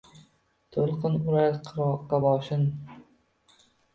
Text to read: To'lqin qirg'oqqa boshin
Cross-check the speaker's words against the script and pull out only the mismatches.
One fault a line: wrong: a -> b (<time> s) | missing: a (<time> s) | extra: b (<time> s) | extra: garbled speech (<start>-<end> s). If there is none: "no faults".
extra: urar (1.3 s)